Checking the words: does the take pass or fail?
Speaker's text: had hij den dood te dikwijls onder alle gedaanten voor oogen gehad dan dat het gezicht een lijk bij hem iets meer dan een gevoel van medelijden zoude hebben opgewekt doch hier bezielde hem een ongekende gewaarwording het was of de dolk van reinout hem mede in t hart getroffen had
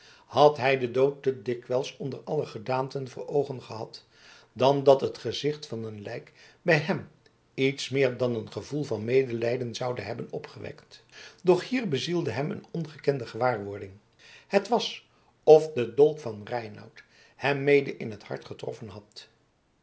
fail